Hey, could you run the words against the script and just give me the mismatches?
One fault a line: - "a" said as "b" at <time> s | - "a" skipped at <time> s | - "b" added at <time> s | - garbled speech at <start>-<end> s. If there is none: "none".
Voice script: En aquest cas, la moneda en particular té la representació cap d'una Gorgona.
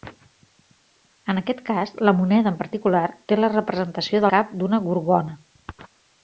none